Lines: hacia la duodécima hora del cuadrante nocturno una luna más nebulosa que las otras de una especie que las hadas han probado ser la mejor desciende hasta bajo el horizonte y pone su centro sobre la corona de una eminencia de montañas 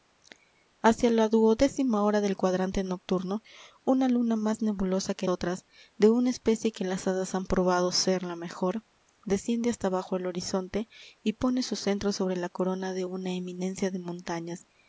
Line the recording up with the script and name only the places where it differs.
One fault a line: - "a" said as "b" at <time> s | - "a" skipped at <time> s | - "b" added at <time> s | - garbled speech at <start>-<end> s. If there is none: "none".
- "las" skipped at 5.3 s